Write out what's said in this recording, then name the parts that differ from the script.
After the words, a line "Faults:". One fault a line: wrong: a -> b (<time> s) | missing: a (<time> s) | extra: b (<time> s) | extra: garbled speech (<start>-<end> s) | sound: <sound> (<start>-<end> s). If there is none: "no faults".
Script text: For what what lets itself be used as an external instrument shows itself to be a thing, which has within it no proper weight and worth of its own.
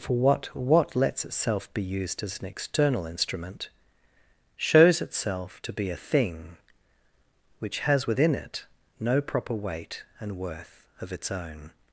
For what what lets itself be used as an external instrument shows itself to be a thing, which has within it no proper weight and worth of its own.
Faults:
no faults